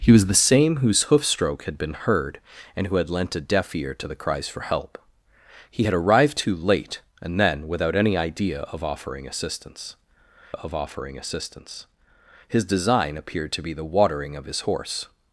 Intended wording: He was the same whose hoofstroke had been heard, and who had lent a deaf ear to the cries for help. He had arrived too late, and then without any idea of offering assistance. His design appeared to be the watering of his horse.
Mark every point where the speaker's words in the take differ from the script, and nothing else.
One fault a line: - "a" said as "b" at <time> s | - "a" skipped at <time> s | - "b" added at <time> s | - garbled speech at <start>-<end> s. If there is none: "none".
- "of offering assistance" added at 10.5 s